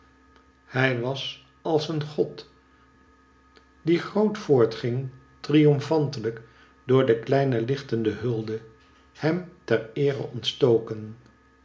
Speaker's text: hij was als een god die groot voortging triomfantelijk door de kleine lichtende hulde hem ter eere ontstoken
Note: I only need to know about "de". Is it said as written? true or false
true